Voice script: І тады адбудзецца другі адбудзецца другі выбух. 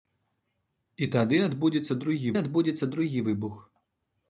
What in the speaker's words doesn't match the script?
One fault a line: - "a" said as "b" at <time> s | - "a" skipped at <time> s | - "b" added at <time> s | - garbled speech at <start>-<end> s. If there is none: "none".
none